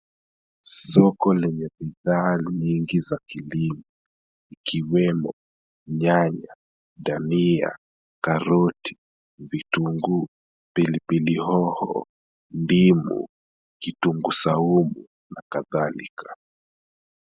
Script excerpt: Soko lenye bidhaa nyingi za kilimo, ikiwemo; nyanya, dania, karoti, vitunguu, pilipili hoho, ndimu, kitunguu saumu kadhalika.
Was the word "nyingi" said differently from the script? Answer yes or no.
no